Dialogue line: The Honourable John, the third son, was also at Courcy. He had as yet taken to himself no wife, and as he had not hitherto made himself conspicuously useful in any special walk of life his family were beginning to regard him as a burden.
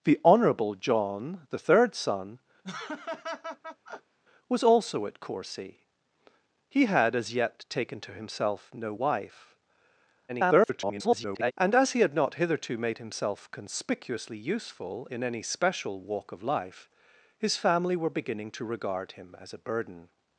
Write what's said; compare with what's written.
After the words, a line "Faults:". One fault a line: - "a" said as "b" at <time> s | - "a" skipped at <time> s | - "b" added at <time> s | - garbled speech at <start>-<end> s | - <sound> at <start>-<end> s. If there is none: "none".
The Honourable John, the third son, was also at Courcy. He had as yet taken to himself no wife, [garbled] and as he had not hitherto made himself conspicuously useful in any special walk of life his family were beginning to regard him as a burden.
Faults:
- laugh at 2.6-4.2 s
- garbled speech at 10.3-11.5 s